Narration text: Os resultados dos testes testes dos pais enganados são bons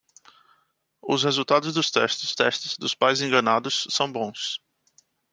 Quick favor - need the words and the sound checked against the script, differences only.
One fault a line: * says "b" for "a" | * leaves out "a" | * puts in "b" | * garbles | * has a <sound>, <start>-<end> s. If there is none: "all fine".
all fine